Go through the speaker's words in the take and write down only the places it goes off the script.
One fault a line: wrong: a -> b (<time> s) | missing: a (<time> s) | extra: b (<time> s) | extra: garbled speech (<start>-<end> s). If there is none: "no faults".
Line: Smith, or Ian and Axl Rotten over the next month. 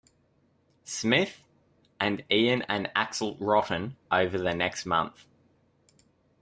wrong: or -> and (2.0 s)